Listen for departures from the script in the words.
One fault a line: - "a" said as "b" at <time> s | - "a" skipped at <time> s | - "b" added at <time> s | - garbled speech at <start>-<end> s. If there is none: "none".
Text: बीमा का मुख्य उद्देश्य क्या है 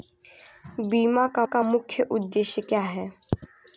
- "का" added at 1.4 s